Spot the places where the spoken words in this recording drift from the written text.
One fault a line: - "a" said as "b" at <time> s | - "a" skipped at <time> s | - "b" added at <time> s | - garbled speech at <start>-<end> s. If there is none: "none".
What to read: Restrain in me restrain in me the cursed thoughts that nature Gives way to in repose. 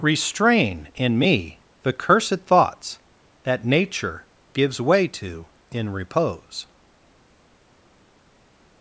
- "restrain in me" skipped at 1.6 s